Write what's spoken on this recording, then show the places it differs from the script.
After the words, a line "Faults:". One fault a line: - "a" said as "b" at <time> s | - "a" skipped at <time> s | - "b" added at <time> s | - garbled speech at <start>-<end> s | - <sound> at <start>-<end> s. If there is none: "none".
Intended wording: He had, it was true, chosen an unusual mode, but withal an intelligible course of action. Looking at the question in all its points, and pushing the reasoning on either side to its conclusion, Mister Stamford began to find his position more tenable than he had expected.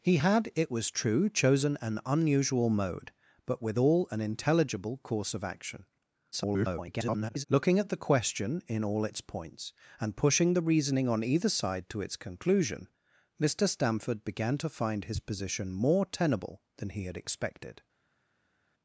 He had, it was true, chosen an unusual mode, but withal an intelligible course of action. [garbled] Looking at the question in all its points, and pushing the reasoning on either side to its conclusion, Mister Stamford began to find his position more tenable than he had expected.
Faults:
- garbled speech at 6.3-7.4 s